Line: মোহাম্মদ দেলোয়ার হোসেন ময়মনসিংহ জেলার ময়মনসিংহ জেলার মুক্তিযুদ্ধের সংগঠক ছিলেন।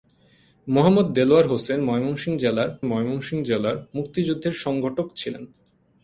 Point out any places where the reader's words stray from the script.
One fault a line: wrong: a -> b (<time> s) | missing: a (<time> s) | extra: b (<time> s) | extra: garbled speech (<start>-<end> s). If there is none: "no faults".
no faults